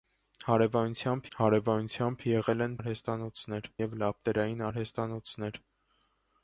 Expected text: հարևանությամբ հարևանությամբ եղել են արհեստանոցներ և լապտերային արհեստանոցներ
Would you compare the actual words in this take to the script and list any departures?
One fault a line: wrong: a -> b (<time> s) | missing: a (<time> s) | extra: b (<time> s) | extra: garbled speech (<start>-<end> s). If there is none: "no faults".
no faults